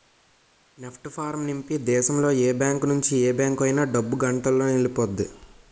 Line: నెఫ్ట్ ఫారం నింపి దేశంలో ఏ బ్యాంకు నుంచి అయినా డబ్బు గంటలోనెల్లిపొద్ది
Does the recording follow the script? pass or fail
fail